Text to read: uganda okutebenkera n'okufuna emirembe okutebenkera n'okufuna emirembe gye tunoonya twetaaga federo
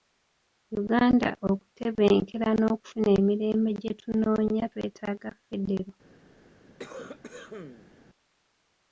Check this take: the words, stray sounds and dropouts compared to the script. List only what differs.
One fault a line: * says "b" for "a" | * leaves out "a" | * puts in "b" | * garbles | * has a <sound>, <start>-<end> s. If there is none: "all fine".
* leaves out "okutebenkera n'okufuna emirembe"
* has a cough, 6.8-7.9 s